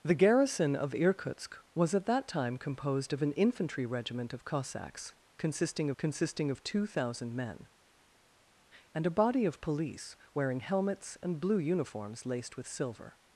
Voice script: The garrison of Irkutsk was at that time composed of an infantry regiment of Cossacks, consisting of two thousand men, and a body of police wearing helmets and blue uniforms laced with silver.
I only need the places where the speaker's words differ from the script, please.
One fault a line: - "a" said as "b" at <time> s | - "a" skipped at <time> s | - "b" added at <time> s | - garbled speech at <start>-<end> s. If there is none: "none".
- "consisting" added at 6.0 s